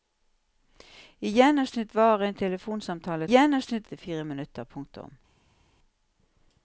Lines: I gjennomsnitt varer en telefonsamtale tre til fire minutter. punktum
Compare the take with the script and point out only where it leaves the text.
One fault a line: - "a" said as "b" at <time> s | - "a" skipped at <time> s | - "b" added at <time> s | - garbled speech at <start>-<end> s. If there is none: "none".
- "tre" said as "gjennomsnitt" at 3.3 s